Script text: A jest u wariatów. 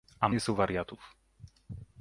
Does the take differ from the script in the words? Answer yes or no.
no